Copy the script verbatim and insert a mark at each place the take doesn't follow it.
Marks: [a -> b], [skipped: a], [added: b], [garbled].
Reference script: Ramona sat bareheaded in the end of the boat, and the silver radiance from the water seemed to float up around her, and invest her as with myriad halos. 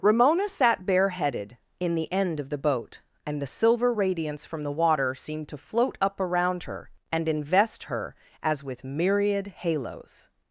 Ramona sat bareheaded in the end of the boat, and the silver radiance from the water seemed to float up around her, and invest her as with myriad halos.